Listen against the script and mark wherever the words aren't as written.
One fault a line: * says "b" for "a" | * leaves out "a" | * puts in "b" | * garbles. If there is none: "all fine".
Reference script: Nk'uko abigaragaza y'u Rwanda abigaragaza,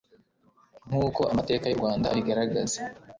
* says "amateka" for "abigaragaza"